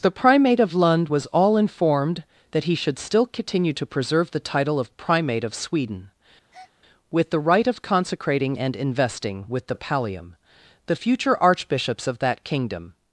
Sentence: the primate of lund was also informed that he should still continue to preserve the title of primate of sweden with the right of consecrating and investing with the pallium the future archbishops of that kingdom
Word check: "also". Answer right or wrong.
wrong